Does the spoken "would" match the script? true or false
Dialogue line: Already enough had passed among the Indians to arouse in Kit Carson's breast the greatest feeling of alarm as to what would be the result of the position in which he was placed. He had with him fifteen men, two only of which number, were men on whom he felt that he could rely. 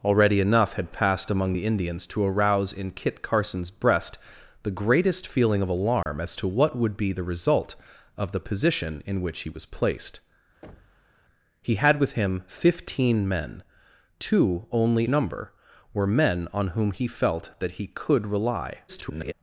true